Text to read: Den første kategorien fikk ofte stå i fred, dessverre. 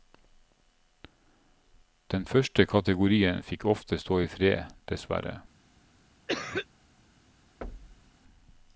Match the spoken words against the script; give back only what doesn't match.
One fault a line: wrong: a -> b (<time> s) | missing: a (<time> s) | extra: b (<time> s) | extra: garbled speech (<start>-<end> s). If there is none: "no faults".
no faults